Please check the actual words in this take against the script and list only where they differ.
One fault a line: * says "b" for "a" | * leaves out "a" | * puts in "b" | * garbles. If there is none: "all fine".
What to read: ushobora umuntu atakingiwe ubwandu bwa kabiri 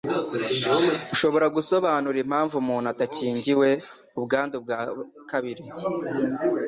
* puts in "gusobanura impamvu"